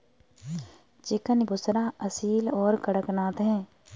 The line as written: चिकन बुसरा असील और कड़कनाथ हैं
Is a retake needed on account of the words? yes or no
no